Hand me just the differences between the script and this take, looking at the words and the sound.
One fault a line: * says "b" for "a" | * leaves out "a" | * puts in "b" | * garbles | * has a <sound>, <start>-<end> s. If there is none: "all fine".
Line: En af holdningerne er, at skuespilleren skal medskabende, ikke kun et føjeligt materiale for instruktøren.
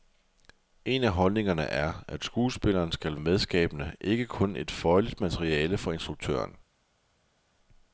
all fine